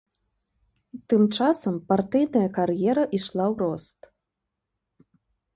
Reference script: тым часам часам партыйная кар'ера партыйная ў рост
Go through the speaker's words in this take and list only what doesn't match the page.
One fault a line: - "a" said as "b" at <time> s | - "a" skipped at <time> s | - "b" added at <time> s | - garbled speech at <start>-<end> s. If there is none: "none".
- "часам" skipped at 1.8 s
- "партыйная" said as "ішла" at 3.2 s